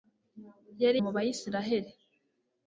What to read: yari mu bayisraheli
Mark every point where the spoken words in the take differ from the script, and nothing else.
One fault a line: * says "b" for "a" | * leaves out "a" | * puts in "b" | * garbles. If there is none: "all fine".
all fine